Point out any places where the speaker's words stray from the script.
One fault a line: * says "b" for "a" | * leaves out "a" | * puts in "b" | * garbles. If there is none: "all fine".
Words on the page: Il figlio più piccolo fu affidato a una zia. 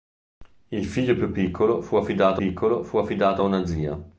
* puts in "piccolo fu affidato"